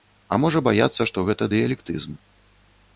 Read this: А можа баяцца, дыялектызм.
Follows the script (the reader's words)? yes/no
no